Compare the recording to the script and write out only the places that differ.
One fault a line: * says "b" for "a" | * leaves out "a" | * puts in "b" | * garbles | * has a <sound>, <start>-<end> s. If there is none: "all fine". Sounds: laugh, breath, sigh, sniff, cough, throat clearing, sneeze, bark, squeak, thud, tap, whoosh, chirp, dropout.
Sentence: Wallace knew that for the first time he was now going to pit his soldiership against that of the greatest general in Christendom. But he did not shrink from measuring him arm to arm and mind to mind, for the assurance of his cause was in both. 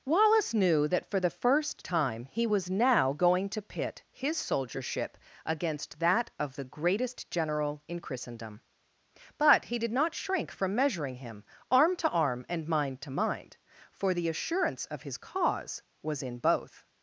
all fine